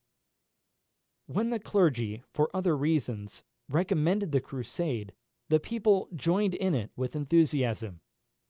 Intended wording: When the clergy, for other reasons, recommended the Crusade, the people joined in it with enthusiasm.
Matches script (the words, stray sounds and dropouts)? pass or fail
pass